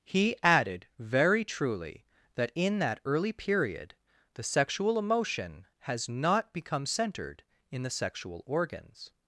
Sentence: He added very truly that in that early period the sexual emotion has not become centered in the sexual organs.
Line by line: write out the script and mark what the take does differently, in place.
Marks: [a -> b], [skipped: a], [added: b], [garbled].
He added very truly that in that early period the sexual emotion has not become centered in the sexual organs.